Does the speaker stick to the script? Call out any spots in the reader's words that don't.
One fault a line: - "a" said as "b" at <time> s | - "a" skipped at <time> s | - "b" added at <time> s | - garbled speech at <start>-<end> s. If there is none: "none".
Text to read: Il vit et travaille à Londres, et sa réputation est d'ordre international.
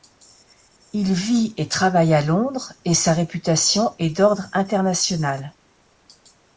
none